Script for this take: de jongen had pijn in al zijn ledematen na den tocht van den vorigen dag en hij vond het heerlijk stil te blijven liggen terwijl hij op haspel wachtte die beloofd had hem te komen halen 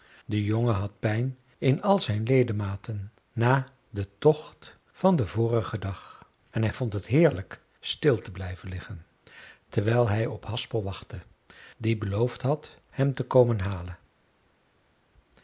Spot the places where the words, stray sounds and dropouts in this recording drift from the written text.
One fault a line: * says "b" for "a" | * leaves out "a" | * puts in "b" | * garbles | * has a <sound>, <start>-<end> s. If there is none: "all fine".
all fine